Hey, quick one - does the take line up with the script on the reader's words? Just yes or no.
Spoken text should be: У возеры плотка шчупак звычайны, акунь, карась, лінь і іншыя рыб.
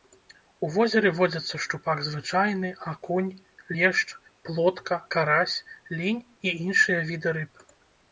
no